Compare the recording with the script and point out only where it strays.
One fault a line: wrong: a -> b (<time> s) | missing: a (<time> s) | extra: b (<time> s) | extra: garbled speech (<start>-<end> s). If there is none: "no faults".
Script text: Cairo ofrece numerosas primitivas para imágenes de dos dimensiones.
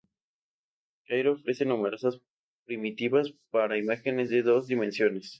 no faults